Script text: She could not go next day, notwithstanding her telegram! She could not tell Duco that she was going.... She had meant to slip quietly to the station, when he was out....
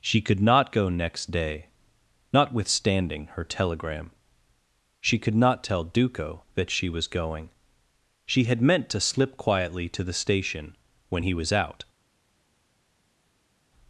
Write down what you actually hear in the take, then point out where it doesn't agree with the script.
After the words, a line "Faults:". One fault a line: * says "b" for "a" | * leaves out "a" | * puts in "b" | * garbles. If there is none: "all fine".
She could not go next day, notwithstanding her telegram! She could not tell Duco that she was going.... She had meant to slip quietly to the station, when he was out....
Faults:
all fine